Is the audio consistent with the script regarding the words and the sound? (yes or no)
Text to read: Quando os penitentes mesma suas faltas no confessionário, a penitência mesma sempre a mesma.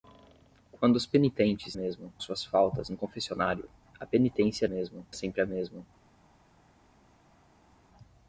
yes